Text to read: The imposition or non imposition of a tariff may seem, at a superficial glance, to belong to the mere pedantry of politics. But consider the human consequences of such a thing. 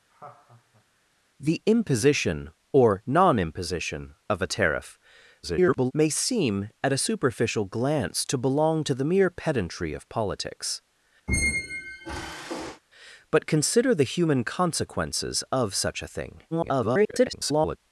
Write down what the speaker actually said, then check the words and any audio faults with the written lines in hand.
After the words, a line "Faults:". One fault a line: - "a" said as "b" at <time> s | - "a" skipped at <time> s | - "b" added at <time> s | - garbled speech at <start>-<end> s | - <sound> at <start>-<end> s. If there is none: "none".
The imposition or non imposition of a tariff [garbled] may seem, at a superficial glance, to belong to the mere pedantry of politics. But consider the human consequences of such a thing. [garbled]
Faults:
- laugh at 0.1-0.8 s
- garbled speech at 5.4-5.9 s
- squeak at 11.3-12.8 s
- garbled speech at 16.5-17.8 s